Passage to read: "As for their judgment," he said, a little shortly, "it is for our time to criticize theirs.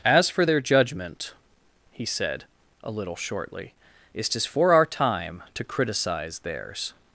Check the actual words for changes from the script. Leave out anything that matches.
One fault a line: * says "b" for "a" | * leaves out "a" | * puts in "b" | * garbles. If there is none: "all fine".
all fine